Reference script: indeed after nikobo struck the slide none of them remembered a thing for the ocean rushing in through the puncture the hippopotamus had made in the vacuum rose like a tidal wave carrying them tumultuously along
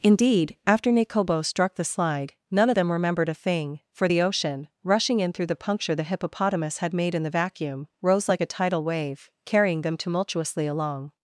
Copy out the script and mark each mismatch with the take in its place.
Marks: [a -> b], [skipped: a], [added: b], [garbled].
indeed after nikobo struck the slide none of them remembered a thing for the ocean rushing in through the puncture the hippopotamus had made in the vacuum rose like a tidal wave carrying them tumultuously along